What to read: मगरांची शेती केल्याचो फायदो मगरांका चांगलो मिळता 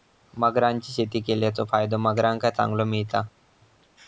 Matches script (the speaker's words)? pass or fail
pass